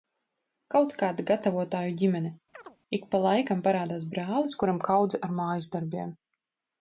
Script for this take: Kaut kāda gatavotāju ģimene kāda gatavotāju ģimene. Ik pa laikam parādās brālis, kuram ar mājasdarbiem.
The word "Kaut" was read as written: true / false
true